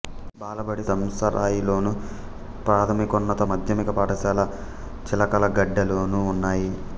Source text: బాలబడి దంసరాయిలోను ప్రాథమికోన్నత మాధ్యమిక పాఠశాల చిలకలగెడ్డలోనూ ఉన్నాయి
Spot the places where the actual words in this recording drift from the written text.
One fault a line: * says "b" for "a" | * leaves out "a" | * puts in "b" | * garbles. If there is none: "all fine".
all fine